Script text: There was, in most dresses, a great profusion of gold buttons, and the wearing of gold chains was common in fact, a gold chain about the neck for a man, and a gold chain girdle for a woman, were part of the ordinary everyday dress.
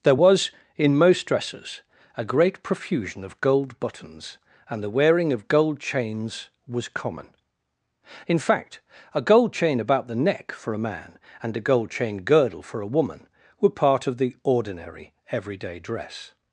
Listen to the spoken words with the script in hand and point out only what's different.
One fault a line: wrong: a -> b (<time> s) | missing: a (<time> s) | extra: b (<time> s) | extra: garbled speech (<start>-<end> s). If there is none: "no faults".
no faults